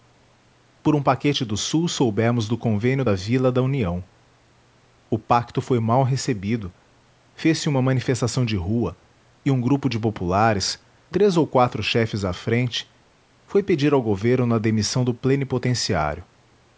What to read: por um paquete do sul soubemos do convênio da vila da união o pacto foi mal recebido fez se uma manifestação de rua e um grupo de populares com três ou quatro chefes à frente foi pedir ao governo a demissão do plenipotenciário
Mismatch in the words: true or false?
true